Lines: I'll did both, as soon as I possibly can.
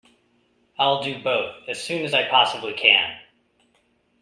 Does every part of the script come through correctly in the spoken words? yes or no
no